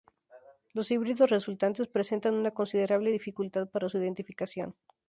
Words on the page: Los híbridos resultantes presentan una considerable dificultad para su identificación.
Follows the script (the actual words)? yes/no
yes